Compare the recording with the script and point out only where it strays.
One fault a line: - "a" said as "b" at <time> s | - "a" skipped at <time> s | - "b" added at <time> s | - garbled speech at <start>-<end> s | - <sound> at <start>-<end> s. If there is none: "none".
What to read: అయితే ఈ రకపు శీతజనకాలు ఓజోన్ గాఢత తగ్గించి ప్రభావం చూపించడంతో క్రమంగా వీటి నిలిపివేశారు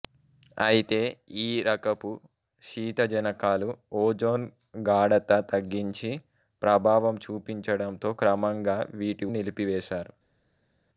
none